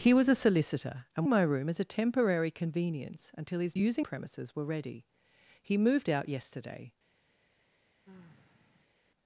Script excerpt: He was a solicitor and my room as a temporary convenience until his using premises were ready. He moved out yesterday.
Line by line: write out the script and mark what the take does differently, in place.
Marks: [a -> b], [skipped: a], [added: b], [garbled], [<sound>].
He was a solicitor and my room as a temporary convenience until his using premises were ready. He moved out yesterday. [sigh]